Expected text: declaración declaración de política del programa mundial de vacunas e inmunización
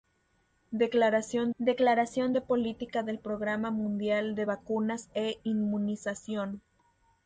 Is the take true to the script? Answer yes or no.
yes